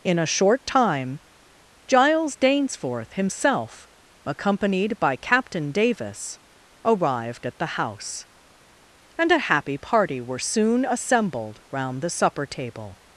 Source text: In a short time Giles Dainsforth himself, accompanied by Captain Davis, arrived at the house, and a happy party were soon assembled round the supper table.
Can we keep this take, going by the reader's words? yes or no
yes